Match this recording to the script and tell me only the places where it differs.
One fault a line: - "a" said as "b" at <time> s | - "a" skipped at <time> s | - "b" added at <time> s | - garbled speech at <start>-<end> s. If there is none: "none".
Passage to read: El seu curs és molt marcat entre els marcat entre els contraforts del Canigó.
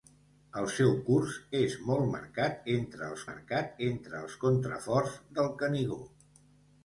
none